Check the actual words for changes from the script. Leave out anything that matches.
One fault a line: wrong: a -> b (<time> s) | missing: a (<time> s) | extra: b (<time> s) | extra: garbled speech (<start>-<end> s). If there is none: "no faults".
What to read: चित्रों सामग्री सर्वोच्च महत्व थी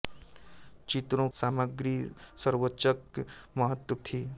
no faults